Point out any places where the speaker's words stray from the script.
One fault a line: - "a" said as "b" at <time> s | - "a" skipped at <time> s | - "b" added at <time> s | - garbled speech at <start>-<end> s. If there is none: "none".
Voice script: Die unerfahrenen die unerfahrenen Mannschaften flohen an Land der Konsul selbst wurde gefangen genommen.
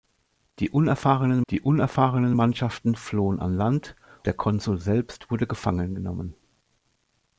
none